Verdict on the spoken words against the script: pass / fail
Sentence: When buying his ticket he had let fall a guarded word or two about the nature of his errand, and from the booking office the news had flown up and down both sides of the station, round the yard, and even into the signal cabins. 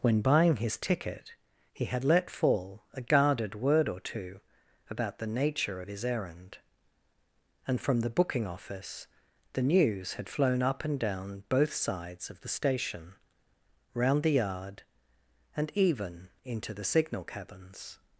pass